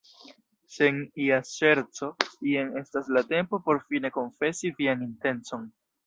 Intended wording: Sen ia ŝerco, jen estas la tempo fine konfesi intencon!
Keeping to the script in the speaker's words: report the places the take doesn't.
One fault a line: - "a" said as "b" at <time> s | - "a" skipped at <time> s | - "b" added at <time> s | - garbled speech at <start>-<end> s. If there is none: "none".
- "por" added at 3.6 s
- "vian" added at 4.8 s